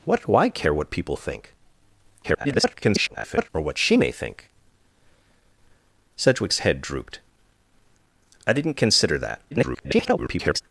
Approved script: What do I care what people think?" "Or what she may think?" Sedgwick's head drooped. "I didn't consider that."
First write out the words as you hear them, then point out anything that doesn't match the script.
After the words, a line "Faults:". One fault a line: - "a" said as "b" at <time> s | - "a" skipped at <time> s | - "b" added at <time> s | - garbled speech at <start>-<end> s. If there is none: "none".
What do I care what people think?" [garbled] "Or what she may think?" Sedgwick's head drooped. "I didn't consider that." [garbled]
Faults:
- garbled speech at 2.2-3.5 s
- garbled speech at 9.5-10.6 s